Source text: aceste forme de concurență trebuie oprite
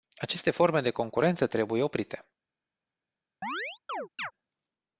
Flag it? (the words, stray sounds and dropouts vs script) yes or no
yes